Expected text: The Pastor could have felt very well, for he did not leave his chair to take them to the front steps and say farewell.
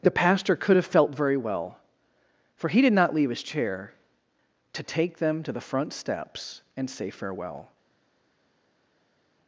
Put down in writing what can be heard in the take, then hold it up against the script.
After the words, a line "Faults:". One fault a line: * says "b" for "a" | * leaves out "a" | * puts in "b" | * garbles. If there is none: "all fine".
The Pastor could have felt very well, for he did not leave his chair to take them to the front steps and say farewell.
Faults:
all fine